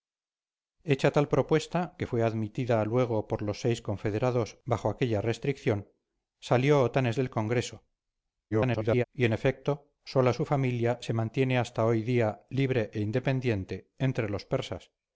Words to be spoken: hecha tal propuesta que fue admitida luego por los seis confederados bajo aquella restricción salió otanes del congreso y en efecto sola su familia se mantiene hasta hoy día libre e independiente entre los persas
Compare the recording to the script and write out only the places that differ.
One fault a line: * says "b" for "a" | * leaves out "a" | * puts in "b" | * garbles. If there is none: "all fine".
* garbles